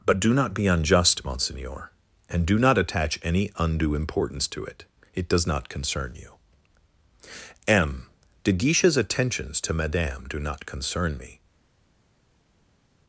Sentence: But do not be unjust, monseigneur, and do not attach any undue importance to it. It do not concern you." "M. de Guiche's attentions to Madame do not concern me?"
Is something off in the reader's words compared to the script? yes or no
yes